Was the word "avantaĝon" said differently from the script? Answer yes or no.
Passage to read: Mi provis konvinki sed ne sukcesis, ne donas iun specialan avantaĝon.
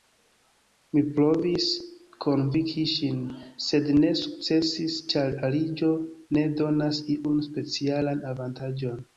no